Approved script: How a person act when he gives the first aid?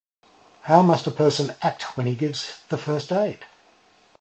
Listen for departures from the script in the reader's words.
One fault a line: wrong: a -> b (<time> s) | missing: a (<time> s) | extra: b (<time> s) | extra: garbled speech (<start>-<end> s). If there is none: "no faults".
extra: must (0.8 s)